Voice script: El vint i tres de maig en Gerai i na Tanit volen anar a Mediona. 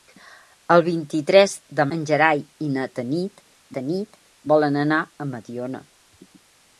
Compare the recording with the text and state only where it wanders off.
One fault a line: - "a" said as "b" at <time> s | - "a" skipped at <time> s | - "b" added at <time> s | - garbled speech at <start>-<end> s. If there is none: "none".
- "maig" skipped at 1.9 s
- "Tanit" added at 3.8 s